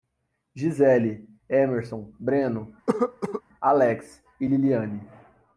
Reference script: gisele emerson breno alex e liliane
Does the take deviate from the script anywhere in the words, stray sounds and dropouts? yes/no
yes